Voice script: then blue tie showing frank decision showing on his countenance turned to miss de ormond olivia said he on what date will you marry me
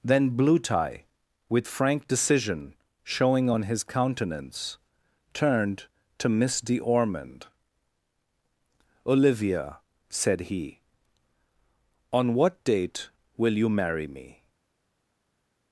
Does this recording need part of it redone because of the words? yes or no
yes